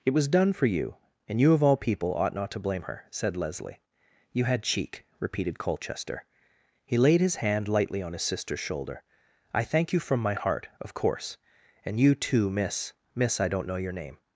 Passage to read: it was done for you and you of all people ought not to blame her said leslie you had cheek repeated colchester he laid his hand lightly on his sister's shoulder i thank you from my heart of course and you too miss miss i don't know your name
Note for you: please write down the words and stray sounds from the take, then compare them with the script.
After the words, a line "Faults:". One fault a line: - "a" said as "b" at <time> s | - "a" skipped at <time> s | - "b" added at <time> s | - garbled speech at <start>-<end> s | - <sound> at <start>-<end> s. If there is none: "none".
it was done for you and you of all people ought not to blame her said leslie you had cheek repeated colchester he laid his hand lightly on his sister's shoulder i thank you from my heart of course and you too miss miss i don't know your name
Faults:
none